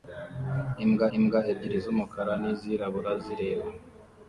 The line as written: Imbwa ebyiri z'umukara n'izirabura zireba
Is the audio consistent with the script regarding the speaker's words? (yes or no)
no